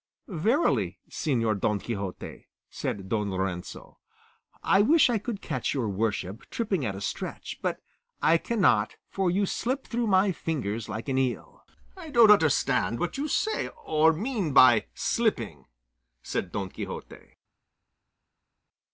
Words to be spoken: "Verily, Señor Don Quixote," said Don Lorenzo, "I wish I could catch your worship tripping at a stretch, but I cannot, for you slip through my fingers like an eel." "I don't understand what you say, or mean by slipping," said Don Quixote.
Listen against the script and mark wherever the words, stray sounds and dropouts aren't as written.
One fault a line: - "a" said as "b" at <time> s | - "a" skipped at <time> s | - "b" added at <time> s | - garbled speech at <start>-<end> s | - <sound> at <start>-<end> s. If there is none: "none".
none